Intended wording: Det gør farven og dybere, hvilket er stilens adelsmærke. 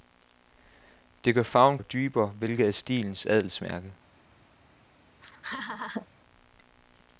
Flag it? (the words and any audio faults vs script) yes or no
yes